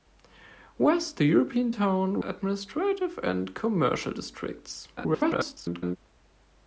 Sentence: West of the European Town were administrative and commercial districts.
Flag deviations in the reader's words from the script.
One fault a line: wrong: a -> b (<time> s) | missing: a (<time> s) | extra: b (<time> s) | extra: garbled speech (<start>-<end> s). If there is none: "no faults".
missing: of (1.2 s)
missing: were (2.2 s)
extra: garbled speech (5.0-6.0 s)